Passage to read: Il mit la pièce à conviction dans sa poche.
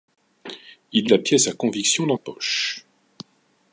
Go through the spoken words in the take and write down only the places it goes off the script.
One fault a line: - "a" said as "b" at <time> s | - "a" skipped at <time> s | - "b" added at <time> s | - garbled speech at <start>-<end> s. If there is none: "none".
- "mit" skipped at 1.1 s
- "sa" skipped at 2.2 s